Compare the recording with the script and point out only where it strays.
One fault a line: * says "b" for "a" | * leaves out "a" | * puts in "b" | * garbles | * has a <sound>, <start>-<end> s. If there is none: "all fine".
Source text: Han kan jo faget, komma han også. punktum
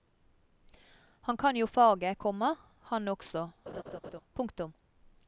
* has a laugh, 3.7-4.2 s